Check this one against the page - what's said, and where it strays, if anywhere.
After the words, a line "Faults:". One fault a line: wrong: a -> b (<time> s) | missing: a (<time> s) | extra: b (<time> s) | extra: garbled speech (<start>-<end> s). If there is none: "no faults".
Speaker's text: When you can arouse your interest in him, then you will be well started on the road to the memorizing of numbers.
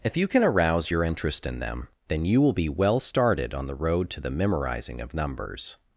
If you can arouse your interest in them, then you will be well started on the road to the memorizing of numbers.
Faults:
wrong: When -> If (0.0 s)
wrong: him -> them (1.6 s)